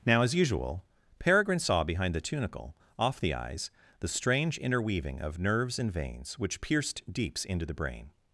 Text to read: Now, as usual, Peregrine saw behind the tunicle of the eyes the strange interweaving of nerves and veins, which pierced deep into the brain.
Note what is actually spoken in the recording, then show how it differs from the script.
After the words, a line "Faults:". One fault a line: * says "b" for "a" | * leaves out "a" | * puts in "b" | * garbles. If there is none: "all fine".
Now, as usual, Peregrine saw behind the tunicle off the eyes the strange interweaving of nerves and veins, which pierced deeps into the brain.
Faults:
* says "off" for "of"
* says "deeps" for "deep"